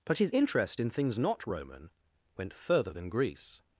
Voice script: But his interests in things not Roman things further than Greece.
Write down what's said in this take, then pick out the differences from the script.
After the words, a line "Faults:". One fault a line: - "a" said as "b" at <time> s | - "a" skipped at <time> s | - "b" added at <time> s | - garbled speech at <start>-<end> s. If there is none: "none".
But his interest in things not Roman went further than Greece.
Faults:
- "interests" said as "interest" at 0.3 s
- "things" said as "went" at 2.4 s